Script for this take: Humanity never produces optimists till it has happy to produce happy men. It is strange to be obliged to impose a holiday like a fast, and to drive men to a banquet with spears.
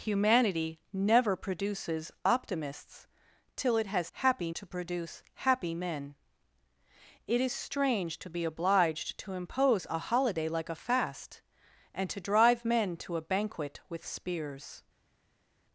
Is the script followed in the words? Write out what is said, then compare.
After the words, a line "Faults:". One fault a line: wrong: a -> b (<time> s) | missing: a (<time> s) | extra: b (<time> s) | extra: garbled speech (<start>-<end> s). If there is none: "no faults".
Humanity never produces optimists till it has happy to produce happy men. It is strange to be obliged to impose a holiday like a fast, and to drive men to a banquet with spears.
Faults:
no faults